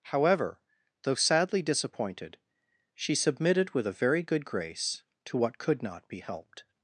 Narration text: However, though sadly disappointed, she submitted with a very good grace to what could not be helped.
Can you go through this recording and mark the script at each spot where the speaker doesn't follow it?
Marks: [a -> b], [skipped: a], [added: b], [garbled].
However, though sadly disappointed, she submitted with a very good grace to what could not be helped.